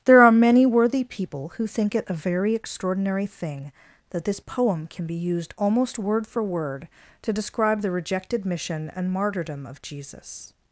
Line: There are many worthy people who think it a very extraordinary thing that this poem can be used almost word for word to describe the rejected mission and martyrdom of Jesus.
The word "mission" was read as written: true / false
true